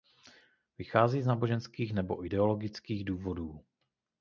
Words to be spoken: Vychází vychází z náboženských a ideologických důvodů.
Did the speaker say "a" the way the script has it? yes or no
no